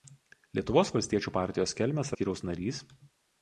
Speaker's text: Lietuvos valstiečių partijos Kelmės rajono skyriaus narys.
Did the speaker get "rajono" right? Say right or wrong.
wrong